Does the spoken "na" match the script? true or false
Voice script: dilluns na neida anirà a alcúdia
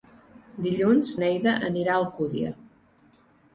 false